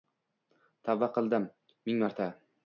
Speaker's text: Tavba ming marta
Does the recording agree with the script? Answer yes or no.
no